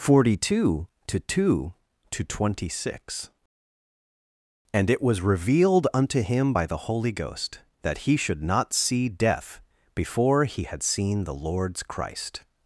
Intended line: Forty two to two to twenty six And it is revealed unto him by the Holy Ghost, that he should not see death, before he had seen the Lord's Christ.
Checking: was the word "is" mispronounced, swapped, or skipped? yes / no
yes